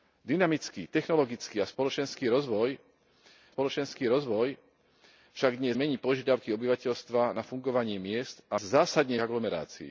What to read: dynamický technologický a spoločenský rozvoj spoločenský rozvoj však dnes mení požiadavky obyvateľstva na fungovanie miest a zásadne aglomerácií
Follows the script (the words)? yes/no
yes